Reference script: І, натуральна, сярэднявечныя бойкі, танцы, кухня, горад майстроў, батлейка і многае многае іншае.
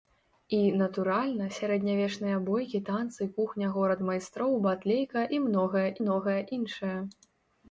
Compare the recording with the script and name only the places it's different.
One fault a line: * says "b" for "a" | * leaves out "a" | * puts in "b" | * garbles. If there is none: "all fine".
all fine